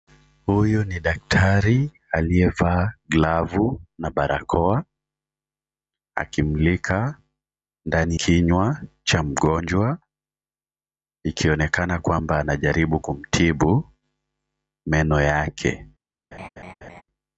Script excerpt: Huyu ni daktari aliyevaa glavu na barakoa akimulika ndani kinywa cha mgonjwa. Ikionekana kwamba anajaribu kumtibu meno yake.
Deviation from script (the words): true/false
false